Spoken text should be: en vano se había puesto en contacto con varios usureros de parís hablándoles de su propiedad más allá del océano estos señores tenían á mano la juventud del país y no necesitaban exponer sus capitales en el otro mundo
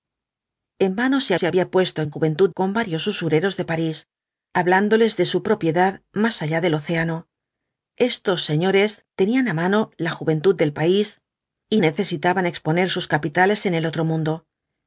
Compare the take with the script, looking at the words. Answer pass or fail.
fail